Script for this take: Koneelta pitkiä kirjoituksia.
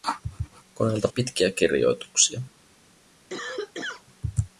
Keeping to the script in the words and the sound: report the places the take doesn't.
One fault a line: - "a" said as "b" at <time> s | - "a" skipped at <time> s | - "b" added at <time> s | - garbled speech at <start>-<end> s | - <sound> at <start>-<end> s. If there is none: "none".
- cough at 3.3-4.0 s